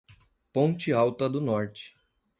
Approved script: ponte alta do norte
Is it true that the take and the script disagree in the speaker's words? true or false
false